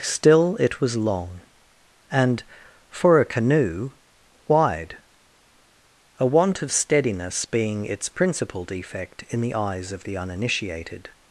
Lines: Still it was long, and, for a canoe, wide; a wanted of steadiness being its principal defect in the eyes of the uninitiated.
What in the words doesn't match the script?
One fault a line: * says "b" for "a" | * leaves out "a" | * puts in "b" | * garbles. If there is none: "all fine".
* says "want" for "wanted"